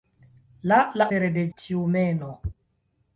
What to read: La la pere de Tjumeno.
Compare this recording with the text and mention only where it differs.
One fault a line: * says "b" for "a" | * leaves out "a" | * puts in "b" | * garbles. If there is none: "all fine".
all fine